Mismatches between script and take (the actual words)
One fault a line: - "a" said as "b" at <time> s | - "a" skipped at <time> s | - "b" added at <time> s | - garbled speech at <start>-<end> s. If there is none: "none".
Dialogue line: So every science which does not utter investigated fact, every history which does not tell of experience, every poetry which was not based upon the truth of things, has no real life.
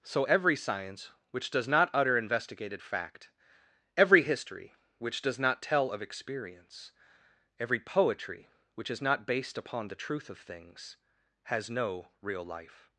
- "was" said as "is" at 8.9 s